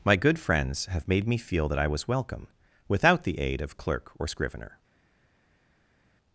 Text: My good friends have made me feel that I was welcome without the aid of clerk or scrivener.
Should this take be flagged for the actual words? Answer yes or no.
no